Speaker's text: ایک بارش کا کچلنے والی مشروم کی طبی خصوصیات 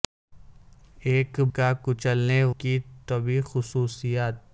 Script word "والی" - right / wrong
wrong